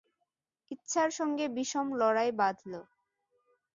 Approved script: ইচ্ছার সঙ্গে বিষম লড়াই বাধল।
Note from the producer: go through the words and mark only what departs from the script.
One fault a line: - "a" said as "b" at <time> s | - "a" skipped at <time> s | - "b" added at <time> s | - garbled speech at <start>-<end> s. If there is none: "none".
none